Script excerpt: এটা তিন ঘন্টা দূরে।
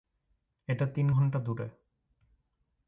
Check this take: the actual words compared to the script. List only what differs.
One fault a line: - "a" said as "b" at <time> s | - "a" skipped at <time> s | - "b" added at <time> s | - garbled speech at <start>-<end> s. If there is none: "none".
none